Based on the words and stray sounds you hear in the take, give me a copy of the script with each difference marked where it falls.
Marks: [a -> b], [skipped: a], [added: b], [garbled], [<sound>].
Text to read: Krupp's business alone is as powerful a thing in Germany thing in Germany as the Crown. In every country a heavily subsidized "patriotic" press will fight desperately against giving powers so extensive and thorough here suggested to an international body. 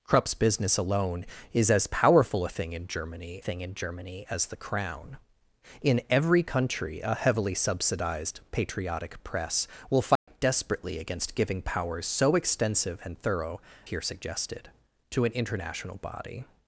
Krupp's business alone is as powerful a thing in Germany thing in Germany as the Crown. In every country a heavily subsidized "patriotic" press will fight [dropout] desperately against giving powers so extensive and thorough here suggested to an international body.